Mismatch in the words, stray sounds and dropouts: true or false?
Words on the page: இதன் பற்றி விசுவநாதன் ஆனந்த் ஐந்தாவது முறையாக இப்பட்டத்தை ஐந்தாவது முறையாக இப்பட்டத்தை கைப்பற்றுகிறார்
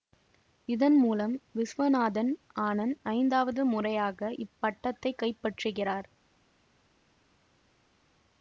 true